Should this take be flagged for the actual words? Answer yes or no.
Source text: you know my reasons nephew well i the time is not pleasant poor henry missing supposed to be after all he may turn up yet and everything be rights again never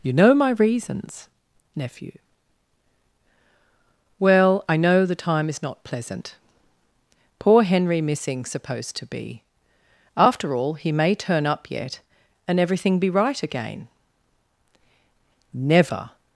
yes